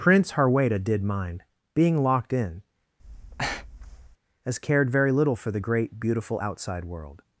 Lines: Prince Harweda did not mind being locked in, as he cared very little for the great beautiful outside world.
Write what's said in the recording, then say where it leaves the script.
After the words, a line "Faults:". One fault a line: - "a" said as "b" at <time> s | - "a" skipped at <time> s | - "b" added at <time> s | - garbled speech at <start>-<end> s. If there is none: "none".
Prince Harweda did mind being locked in, as cared very little for the great beautiful outside world.
Faults:
- "not" skipped at 1.0 s
- "he" skipped at 4.6 s